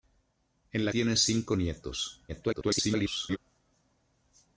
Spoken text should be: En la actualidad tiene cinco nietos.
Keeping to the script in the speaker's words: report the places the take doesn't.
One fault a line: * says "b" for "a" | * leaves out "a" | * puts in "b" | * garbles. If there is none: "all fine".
* leaves out "actualidad"
* garbles